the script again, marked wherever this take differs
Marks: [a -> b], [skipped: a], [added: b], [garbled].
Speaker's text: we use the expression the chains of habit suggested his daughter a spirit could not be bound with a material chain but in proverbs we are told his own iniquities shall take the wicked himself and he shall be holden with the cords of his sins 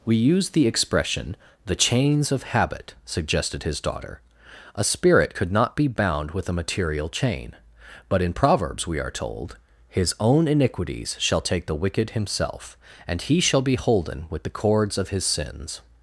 we use the expression the chains of habit suggested his daughter a spirit could not be bound with a material chain but in proverbs we are told his own iniquities shall take the wicked himself and he shall be holden with the cords of his sins